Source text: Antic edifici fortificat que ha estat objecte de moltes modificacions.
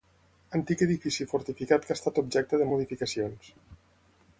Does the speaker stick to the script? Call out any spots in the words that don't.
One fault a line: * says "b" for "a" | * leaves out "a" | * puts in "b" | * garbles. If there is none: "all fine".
* leaves out "moltes"